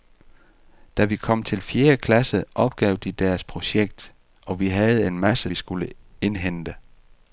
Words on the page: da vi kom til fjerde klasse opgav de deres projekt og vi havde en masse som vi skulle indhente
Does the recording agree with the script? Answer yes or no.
no